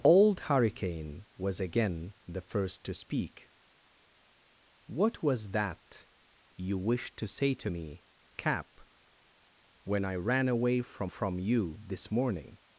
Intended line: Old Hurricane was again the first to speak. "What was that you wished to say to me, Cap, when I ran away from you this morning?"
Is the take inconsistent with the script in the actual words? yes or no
yes